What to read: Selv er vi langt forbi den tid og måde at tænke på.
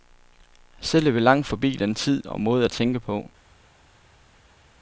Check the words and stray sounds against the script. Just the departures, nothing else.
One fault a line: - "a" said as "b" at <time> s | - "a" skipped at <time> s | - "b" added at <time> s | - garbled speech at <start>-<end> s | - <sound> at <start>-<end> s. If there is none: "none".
none